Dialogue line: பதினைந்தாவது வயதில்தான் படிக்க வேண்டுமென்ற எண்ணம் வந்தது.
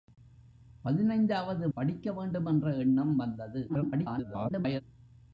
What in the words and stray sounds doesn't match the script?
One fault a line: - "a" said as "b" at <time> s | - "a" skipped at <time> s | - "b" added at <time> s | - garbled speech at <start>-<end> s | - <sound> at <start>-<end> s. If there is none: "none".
- "வயதில்தான்" skipped at 1.7 s
- garbled speech at 3.7-4.8 s